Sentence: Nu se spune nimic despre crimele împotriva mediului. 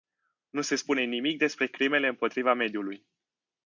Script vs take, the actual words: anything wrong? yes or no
no